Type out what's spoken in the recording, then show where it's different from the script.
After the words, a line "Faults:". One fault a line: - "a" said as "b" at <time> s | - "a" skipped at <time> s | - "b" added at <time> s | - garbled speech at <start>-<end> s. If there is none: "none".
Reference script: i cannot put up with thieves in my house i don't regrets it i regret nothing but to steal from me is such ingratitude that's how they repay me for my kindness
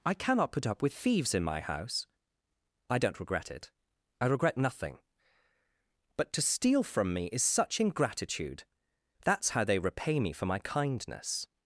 i cannot put up with thieves in my house i don't regret it i regret nothing but to steal from me is such ingratitude that's how they repay me for my kindness
Faults:
- "regrets" said as "regret" at 3.2 s